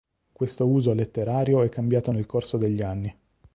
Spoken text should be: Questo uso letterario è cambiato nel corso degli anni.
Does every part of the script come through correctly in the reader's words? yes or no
yes